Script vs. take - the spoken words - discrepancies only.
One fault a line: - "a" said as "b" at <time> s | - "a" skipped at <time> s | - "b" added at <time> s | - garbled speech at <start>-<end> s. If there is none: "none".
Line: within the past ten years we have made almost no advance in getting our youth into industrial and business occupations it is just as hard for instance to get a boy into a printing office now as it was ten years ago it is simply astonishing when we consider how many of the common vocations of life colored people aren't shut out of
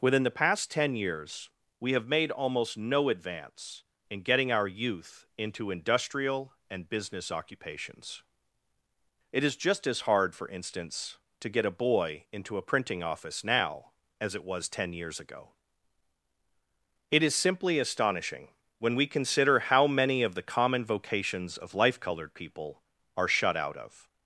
- "aren't" said as "are" at 23.1 s